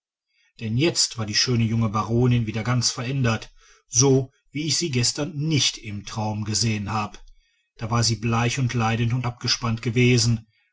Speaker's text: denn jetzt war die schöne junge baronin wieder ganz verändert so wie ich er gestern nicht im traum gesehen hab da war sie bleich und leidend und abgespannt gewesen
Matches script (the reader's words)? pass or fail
fail